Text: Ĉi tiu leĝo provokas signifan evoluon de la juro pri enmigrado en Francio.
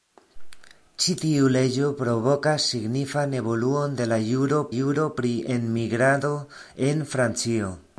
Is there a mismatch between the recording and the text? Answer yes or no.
yes